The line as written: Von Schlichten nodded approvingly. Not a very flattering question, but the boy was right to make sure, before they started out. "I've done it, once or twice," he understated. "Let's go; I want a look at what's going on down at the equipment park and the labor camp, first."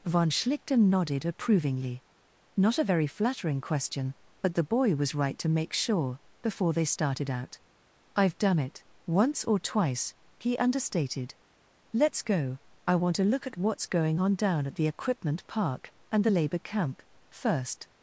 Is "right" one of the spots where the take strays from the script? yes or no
no